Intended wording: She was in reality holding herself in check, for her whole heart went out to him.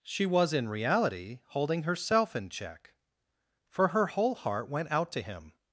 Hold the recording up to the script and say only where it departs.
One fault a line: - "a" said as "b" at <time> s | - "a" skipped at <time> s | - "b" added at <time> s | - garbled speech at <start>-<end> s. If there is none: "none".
none